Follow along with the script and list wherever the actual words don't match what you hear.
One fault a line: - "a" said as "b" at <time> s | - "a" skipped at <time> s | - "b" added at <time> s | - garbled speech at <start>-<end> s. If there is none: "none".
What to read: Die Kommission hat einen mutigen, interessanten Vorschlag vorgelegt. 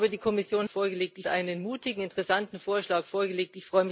- "hat" said as "vorgelegt" at 0.7 s